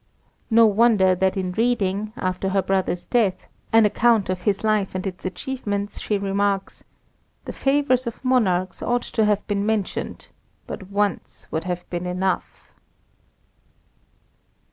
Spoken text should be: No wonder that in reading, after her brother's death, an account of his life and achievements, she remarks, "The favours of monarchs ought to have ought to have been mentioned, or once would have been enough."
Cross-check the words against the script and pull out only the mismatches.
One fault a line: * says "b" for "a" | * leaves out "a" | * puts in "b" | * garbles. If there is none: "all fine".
* puts in "its"
* leaves out "ought to have"
* says "but" for "or"